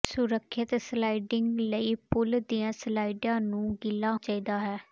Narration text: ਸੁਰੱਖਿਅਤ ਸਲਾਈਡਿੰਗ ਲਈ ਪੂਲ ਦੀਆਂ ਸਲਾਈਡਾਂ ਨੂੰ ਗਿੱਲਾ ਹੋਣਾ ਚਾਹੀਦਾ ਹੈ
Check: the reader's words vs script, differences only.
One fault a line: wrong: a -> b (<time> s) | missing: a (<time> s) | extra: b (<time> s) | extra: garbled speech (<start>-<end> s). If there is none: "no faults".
missing: ਹੋਣਾ (4.1 s)